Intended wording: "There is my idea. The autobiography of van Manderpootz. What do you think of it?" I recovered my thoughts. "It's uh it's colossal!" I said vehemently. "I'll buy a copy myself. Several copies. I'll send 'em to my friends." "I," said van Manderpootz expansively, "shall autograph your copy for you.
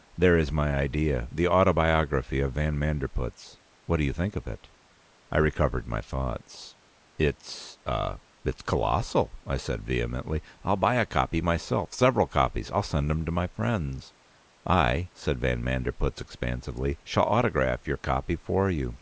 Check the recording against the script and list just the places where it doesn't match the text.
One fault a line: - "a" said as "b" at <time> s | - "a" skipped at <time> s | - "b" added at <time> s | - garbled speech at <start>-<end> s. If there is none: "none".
none